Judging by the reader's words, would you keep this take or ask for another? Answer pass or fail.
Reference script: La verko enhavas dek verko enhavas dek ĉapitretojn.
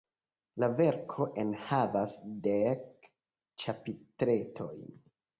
fail